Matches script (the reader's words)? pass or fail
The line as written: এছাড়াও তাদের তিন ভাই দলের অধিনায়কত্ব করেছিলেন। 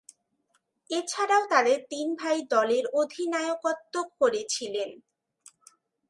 pass